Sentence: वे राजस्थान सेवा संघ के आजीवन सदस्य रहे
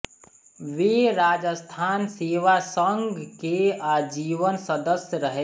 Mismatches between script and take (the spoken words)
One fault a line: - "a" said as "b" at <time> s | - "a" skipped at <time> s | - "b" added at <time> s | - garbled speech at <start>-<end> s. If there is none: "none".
none